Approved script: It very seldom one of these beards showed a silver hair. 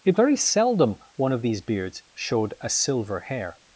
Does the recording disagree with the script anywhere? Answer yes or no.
no